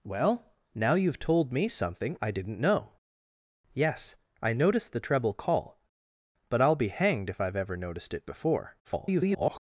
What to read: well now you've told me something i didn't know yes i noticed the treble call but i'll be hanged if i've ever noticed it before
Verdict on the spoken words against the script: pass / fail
fail